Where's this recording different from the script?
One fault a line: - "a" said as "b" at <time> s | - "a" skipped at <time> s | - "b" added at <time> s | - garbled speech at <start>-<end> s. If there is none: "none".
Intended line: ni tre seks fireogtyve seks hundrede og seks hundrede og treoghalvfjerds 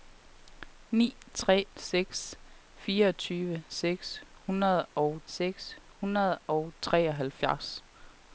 none